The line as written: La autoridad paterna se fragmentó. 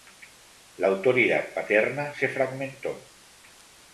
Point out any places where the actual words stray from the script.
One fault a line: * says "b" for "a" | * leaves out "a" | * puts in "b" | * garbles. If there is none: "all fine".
all fine